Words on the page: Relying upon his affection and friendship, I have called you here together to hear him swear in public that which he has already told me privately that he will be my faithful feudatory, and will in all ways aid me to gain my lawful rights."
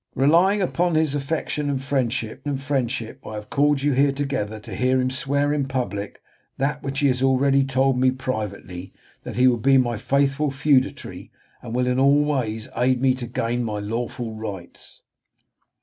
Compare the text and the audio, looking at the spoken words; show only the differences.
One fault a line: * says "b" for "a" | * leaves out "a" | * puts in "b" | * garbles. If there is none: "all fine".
* puts in "and friendship"